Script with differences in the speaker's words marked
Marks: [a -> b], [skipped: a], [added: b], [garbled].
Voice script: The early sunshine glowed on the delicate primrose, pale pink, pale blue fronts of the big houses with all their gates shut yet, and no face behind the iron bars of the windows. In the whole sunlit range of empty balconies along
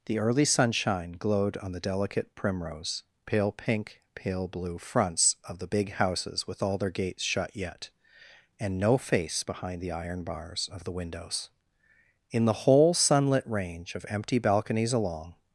The early sunshine glowed on the delicate primrose, pale pink, pale blue fronts of the big houses with all their gates shut yet, and no face behind the iron bars of the windows. In the whole sunlit range of empty balconies along